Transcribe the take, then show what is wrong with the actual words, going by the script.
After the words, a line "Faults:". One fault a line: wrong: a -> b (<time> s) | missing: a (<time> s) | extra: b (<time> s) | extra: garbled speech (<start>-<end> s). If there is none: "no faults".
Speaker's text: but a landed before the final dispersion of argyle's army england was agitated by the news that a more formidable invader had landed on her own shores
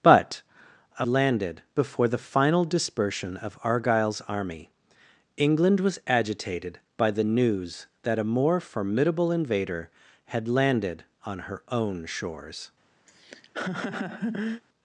but a landed before the final dispersion of argyle's army england was agitated by the news that a more formidable invader had landed on her own shores
Faults:
no faults